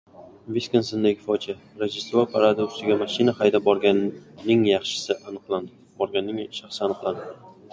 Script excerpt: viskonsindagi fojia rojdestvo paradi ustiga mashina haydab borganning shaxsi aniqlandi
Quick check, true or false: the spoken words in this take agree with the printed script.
true